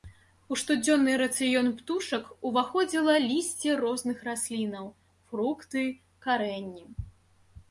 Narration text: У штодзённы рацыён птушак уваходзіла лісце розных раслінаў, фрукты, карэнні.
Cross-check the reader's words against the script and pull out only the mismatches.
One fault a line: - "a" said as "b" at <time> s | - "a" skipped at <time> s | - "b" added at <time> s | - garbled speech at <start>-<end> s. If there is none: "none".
none